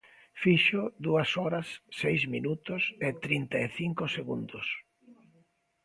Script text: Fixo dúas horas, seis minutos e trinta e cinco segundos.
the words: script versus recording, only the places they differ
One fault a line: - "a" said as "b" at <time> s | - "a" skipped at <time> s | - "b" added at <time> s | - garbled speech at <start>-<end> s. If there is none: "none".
none